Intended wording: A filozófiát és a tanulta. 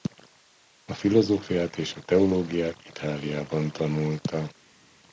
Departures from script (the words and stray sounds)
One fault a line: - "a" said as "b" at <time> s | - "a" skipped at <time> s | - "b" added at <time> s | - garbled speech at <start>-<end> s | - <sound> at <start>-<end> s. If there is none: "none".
- "teológiát Itáliában" added at 2.0 s